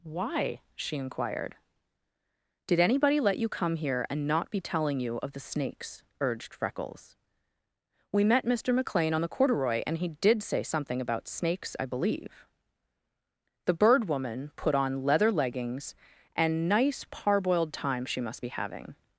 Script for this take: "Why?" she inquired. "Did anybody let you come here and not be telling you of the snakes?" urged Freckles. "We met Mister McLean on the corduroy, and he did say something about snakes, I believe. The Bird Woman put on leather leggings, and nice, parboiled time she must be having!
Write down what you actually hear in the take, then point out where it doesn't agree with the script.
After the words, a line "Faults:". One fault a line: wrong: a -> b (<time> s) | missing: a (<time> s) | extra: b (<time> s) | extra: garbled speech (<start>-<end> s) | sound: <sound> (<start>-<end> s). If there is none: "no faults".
"Why?" she inquired. "Did anybody let you come here and not be telling you of the snakes?" urged Freckles. "We met Mister McLean on the corduroy, and he did say something about snakes, I believe. The Bird Woman put on leather leggings, and nice, parboiled time she must be having!
Faults:
no faults